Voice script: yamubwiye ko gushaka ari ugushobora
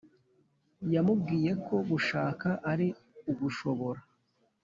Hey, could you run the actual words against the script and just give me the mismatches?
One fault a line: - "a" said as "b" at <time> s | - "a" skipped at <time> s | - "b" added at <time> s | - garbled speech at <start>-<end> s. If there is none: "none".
none